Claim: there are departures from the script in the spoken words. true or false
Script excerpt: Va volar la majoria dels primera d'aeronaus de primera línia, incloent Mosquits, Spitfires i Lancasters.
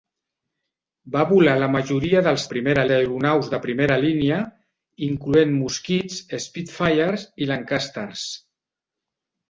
false